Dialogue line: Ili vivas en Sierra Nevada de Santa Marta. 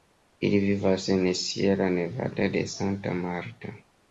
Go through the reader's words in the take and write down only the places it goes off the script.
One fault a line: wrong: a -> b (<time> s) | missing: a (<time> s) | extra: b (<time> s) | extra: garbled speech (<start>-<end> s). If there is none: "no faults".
no faults